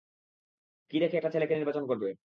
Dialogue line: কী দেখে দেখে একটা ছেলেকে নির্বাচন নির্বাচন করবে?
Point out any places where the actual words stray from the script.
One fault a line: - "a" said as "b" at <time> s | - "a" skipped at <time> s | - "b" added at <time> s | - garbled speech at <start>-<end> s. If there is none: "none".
- "দেখে" skipped at 1.2 s
- "নির্বাচন" skipped at 1.8 s